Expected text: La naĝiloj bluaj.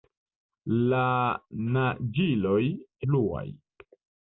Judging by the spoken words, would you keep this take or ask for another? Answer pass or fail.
pass